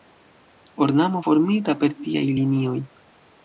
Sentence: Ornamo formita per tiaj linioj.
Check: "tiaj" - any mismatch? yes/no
no